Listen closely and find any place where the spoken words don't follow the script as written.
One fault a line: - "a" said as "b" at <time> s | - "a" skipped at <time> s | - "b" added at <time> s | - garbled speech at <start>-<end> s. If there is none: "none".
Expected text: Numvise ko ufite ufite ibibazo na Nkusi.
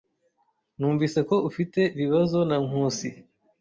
- "ufite" skipped at 1.8 s